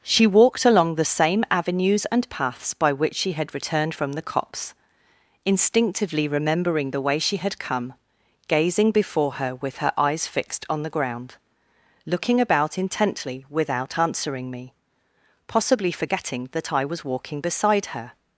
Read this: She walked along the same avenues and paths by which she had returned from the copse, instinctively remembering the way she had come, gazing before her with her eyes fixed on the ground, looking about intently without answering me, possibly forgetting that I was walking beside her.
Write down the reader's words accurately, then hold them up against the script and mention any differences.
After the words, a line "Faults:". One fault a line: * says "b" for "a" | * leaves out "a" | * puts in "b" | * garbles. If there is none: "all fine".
She walked along the same avenues and paths by which she had returned from the copse, instinctively remembering the way she had come, gazing before her with her eyes fixed on the ground, looking about intently without answering me, possibly forgetting that I was walking beside her.
Faults:
all fine